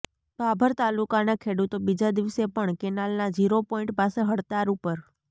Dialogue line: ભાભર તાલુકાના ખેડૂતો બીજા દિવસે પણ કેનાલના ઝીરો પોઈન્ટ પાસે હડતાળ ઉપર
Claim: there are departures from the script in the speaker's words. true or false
false